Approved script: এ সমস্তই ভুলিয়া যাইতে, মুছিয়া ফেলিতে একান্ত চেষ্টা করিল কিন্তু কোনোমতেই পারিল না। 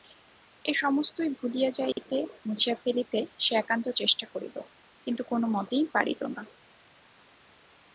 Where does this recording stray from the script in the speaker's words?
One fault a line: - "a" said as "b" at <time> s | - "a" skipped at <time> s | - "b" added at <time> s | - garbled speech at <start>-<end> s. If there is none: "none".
- "সে" added at 3.4 s